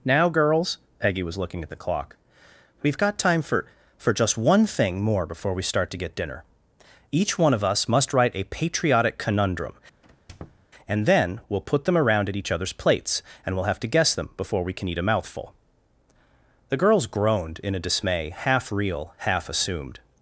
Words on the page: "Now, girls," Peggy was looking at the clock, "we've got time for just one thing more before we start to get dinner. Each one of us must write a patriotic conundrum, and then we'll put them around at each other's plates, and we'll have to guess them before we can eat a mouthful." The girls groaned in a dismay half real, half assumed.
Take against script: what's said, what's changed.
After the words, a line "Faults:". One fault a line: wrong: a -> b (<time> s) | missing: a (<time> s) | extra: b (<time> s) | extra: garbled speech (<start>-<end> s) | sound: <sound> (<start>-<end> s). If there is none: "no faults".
"Now, girls," Peggy was looking at the clock, "we've got time for for just one thing more before we start to get dinner. Each one of us must write a patriotic conundrum, and then we'll put them around at each other's plates, and we'll have to guess them before we can eat a mouthful." The girls groaned in a dismay half real, half assumed.
Faults:
extra: for (4.0 s)
sound: squeak (10.0-10.7 s)